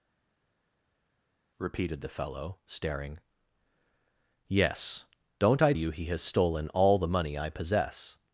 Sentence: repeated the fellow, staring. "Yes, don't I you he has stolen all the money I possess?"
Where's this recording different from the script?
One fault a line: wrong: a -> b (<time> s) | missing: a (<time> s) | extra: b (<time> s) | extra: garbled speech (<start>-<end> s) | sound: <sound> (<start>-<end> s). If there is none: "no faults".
no faults